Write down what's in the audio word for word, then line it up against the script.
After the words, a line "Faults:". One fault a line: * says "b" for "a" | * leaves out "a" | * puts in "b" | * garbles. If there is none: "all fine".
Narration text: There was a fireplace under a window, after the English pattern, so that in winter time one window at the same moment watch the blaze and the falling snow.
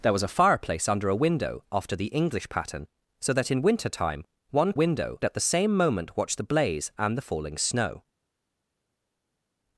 There was a fireplace under a window, after the English pattern, so that in winter time one window at the same moment watch the blaze and the falling snow.
Faults:
all fine